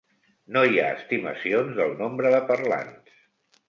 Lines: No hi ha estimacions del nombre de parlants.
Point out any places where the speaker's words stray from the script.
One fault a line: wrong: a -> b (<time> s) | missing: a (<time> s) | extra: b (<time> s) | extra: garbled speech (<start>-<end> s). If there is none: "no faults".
no faults